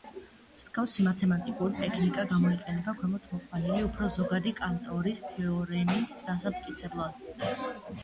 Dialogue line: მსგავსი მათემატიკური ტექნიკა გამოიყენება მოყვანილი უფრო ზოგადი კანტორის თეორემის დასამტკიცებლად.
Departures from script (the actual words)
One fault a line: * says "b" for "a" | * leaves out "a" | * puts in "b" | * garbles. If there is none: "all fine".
* puts in "ქვემოთ"